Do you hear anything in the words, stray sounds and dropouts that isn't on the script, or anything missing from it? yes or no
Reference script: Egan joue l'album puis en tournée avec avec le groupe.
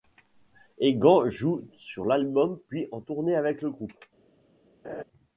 yes